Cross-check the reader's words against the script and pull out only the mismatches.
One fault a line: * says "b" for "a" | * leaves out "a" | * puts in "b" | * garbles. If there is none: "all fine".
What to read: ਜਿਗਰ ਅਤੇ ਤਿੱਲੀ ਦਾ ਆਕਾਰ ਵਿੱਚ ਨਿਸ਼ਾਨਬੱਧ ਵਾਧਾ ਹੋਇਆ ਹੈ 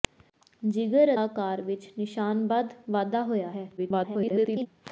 * leaves out "ਅਤੇ ਤਿੱਲੀ ਦਾ"
* garbles